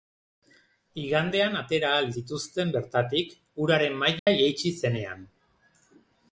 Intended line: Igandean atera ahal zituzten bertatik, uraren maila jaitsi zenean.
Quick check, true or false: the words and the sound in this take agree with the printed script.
false